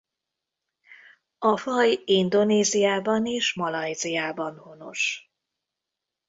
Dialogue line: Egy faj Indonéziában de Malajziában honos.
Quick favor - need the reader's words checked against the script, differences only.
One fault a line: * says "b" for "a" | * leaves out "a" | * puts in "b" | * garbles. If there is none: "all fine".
* says "A" for "Egy"
* says "és" for "de"